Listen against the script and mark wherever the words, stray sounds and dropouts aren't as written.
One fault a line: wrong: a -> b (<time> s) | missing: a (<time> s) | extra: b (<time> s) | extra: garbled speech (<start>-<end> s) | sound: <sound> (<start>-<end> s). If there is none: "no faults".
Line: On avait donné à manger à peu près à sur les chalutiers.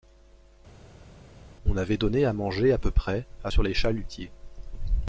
no faults